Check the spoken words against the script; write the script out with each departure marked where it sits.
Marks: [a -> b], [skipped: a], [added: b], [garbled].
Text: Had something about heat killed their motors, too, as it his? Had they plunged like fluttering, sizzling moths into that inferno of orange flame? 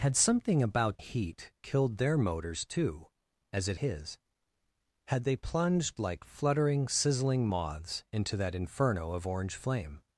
Had something about heat killed their motors, too, as it his? Had they plunged like fluttering, sizzling moths into that inferno of orange flame?